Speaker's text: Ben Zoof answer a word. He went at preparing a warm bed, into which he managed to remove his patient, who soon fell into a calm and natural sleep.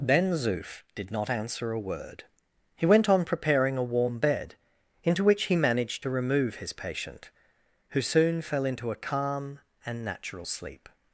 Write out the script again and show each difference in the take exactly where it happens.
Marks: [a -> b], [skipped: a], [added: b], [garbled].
Ben Zoof [added: did not] answer a word. He went [at -> on] preparing a warm bed, into which he managed to remove his patient, who soon fell into a calm and natural sleep.